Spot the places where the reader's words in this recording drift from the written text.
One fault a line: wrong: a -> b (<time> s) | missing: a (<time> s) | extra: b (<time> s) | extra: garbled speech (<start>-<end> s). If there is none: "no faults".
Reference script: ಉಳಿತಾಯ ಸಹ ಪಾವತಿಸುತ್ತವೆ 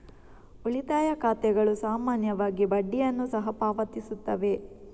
extra: ಖಾತೆಗಳು ಸಾಮಾನ್ಯವಾಗಿ ಬಡ್ಡಿಯನ್ನು (1.1 s)